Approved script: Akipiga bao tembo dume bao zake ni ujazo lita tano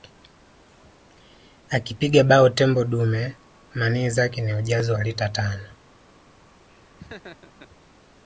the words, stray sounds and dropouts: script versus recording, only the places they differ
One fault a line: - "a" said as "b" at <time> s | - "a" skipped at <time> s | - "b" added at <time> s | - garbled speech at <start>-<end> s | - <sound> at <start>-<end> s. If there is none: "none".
- "bao" said as "manii" at 3.7 s
- "wa" added at 4.9 s
- laugh at 6.7-7.7 s